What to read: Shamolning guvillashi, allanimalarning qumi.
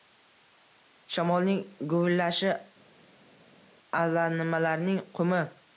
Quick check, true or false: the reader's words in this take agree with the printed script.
true